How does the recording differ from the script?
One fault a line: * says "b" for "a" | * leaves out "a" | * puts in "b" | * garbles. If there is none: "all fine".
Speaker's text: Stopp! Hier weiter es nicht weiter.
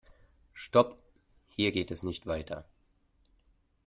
* says "geht" for "weiter"